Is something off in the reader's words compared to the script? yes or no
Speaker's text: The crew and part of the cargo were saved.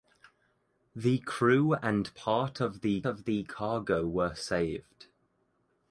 yes